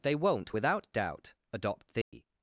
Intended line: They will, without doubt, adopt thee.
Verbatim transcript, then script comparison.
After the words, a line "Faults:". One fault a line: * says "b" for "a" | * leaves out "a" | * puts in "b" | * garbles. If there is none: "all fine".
They won't, without doubt, adopt thee.
Faults:
* says "won't" for "will"